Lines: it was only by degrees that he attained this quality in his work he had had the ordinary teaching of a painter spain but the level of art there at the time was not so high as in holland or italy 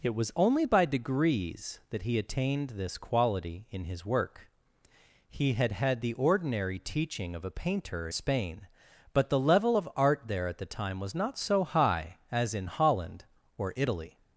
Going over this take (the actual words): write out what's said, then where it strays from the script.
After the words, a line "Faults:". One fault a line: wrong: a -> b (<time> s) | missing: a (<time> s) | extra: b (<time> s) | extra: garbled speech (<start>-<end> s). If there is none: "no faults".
it was only by degrees that he attained this quality in his work he had had the ordinary teaching of a painter spain but the level of art there at the time was not so high as in holland or italy
Faults:
no faults